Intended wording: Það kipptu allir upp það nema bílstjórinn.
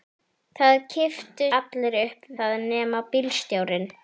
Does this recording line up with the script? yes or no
yes